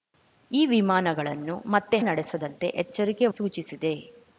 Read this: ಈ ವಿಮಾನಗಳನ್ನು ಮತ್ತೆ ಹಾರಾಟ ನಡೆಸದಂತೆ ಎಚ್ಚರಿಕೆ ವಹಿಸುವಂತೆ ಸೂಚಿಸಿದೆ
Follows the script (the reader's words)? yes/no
no